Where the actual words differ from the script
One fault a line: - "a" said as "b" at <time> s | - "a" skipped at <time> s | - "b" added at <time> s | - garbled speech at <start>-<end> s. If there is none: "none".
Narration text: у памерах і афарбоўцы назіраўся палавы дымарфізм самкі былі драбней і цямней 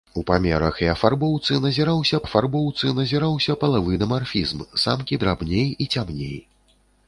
- "афарбоўцы назіраўся" added at 2.2 s
- "былі" skipped at 5.2 s